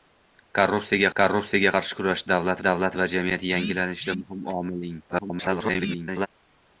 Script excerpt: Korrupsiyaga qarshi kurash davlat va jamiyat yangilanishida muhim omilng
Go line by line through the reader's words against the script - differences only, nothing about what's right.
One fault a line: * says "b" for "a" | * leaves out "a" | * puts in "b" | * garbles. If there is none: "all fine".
* puts in "korrupsiyaga"
* puts in "davlat"
* garbles